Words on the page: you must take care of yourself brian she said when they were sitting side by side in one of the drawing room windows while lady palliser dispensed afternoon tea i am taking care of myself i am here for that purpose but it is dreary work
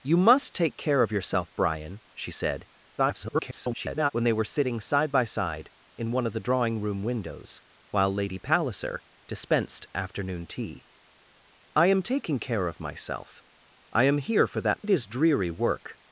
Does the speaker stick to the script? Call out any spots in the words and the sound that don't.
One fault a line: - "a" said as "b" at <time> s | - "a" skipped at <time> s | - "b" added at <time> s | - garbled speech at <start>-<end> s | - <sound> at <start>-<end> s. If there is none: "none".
- garbled speech at 3.0-4.1 s
- "purpose but" skipped at 14.9 s